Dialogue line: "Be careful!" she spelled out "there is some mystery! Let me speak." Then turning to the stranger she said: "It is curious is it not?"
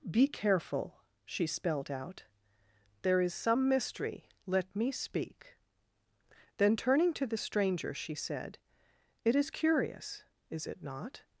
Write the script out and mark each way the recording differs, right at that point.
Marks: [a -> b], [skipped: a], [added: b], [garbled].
"Be careful!" she spelled out "there is some mystery! Let me speak." Then turning to the stranger she said: "It is curious is it not?"